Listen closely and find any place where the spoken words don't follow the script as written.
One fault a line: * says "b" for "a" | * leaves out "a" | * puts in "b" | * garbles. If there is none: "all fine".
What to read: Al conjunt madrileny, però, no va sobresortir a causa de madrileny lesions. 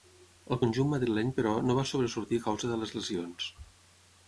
* says "les" for "madrileny"